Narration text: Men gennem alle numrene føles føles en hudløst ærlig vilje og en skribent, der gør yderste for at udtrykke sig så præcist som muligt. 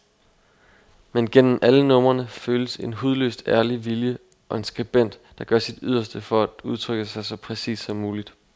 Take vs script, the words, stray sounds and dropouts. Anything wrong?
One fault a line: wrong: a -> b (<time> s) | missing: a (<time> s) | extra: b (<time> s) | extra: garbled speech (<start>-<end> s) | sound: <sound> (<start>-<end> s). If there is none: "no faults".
missing: føles (2.8 s)
extra: sit (5.6 s)